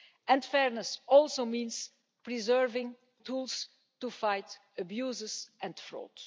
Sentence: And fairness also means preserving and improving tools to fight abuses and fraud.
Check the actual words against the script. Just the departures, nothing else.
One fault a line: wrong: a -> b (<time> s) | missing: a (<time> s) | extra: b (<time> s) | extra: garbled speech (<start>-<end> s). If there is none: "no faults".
missing: and improving (3.0 s)